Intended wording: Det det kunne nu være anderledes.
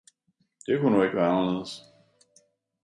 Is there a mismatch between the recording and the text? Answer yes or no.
yes